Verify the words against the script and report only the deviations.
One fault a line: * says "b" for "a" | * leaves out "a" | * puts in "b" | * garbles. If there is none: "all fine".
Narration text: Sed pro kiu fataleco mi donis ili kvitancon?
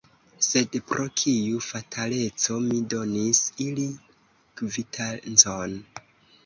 all fine